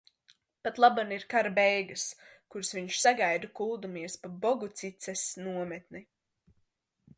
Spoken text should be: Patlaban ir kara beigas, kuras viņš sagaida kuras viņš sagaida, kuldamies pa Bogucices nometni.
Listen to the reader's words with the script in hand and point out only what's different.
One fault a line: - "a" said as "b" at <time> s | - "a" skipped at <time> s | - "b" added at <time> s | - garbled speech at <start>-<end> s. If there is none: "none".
- "kuras viņš sagaida" skipped at 3.5 s